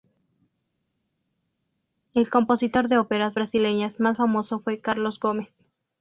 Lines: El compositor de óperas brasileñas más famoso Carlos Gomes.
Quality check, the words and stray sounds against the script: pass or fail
fail